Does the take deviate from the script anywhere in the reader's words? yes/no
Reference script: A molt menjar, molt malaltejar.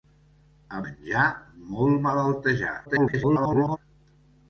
yes